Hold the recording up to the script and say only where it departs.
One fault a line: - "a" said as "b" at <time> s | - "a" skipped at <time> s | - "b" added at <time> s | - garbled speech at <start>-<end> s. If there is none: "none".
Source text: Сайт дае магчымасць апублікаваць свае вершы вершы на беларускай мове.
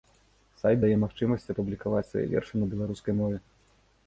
- "вершы" skipped at 2.5 s